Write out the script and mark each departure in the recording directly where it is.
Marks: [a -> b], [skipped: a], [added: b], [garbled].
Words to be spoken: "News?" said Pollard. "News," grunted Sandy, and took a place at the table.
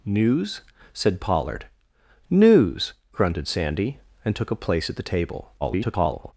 "News?" said Pollard. "News," grunted Sandy, and took a place at the table. [garbled]